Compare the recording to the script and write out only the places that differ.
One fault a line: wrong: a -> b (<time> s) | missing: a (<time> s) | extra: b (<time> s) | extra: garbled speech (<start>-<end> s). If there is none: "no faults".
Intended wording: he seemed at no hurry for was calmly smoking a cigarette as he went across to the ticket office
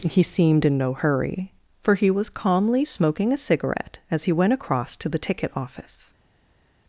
wrong: at -> in (0.7 s)
extra: he (1.9 s)